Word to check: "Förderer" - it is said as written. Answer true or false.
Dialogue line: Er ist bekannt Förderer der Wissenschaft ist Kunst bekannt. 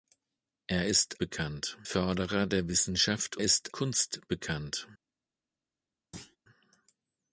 true